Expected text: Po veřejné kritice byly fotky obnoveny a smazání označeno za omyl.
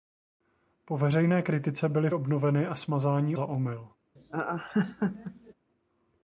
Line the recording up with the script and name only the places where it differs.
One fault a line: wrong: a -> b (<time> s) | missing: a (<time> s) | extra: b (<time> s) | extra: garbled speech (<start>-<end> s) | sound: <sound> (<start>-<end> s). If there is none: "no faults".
missing: fotky (2.1 s)
missing: označeno (3.4 s)
sound: laugh (4.2-5.5 s)